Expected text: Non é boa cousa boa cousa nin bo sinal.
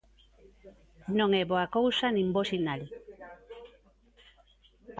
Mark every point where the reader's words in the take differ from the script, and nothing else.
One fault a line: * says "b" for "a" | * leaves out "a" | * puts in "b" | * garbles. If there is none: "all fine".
* leaves out "boa cousa"